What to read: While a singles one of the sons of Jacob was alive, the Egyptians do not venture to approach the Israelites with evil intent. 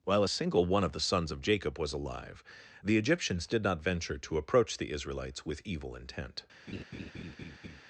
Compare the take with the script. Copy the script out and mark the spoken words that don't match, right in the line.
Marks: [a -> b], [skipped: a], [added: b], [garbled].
While a [singles -> single] one of the sons of Jacob was alive, the Egyptians [do -> did] not venture to approach the Israelites with evil intent.